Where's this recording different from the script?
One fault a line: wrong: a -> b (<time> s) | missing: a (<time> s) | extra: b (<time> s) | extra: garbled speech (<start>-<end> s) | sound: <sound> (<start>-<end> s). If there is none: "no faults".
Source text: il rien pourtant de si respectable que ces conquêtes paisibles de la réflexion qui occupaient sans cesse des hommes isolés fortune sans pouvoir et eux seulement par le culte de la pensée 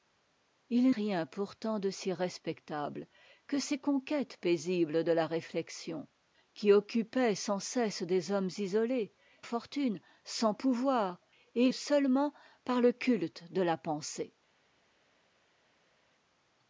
no faults